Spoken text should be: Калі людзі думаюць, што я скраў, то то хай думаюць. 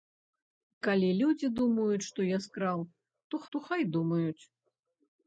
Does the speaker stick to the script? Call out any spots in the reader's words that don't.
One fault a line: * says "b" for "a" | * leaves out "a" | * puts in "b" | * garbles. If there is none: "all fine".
all fine